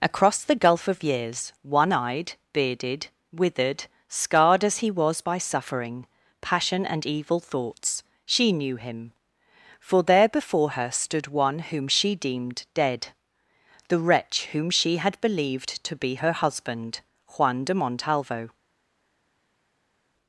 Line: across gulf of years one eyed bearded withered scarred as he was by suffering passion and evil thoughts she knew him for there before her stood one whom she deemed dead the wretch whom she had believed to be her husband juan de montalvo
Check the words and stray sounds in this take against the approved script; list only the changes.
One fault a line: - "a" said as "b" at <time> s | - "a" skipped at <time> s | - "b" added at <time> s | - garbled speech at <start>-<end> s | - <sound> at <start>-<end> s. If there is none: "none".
- "the" added at 0.5 s